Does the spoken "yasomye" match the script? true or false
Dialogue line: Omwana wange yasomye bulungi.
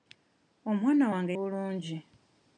false